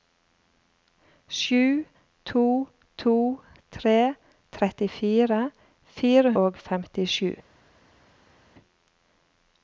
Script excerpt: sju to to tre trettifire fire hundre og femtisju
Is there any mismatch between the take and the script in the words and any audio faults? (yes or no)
yes